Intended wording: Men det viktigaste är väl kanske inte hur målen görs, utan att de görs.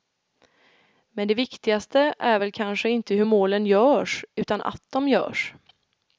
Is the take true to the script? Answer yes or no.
yes